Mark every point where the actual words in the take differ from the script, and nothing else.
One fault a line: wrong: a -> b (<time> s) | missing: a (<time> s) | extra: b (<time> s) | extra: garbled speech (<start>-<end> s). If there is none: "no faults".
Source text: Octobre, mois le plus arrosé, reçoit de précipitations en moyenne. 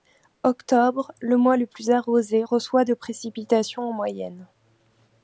extra: le (1.2 s)